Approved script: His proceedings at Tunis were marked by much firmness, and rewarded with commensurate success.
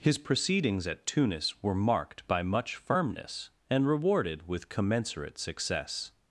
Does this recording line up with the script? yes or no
yes